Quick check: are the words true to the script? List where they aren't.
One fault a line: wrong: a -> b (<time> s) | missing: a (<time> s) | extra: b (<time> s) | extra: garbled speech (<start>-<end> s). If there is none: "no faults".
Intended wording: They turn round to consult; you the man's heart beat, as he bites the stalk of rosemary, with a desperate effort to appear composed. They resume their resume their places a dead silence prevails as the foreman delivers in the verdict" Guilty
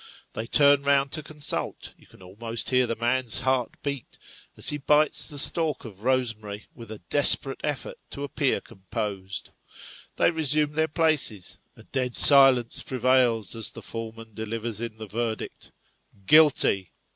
extra: can almost hear (2.1 s)
missing: resume their (10.9 s)